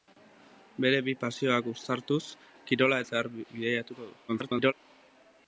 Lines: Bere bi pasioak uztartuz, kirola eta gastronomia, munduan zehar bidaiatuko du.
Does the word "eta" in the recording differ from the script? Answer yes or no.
yes